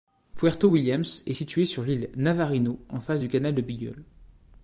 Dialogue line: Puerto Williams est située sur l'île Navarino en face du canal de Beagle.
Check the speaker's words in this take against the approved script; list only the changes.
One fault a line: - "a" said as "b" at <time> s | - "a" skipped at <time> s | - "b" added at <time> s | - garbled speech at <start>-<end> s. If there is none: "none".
none